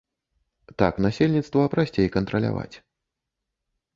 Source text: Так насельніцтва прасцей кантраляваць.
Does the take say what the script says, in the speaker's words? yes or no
yes